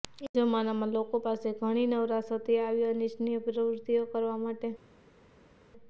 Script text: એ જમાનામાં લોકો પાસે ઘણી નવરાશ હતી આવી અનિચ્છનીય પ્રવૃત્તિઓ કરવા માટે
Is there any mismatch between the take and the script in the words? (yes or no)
no